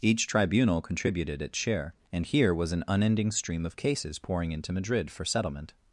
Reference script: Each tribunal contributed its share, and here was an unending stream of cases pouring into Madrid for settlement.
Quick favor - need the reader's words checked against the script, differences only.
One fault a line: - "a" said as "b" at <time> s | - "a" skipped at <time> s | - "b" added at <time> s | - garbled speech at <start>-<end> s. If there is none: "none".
none